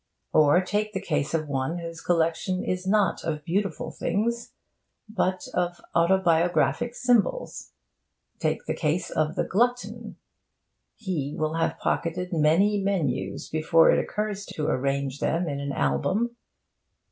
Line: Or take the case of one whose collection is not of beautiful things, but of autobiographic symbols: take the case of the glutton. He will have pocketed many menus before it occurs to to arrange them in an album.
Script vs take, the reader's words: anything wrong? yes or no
no